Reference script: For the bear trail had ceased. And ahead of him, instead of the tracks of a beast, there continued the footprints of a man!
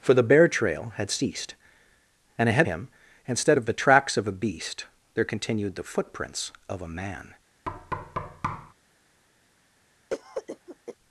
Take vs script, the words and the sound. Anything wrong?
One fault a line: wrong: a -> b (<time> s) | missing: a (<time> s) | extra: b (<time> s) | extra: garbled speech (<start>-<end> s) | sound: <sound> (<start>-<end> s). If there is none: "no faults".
missing: of (2.7 s)
sound: thud (7.6-8.7 s)
sound: cough (10.1-11.0 s)